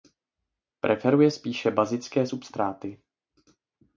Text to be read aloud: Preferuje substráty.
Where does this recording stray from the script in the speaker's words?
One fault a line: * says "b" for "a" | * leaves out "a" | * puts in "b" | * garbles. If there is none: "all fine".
* puts in "spíše bazické"